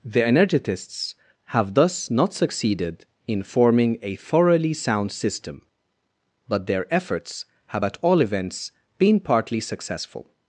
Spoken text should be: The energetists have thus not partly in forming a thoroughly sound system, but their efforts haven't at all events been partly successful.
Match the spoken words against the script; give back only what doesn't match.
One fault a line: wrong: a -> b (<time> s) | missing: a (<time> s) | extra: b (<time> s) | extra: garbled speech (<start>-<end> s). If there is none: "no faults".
wrong: partly -> succeeded (2.3 s)
wrong: haven't -> have (7.7 s)